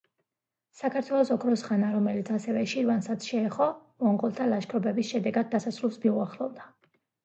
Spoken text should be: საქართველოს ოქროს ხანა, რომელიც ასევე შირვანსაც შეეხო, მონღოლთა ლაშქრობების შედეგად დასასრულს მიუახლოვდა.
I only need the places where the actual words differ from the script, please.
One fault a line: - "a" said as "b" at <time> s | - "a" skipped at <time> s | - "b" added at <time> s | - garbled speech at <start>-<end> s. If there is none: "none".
none